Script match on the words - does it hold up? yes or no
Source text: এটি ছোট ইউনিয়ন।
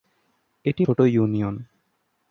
yes